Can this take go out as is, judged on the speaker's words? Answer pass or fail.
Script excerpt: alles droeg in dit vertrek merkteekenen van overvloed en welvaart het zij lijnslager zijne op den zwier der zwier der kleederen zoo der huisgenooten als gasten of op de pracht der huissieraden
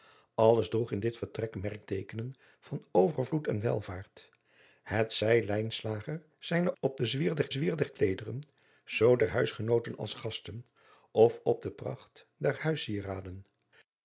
pass